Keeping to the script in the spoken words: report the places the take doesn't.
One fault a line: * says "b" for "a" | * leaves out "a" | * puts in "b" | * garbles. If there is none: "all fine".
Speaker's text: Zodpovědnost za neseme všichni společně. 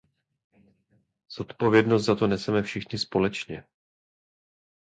* puts in "to"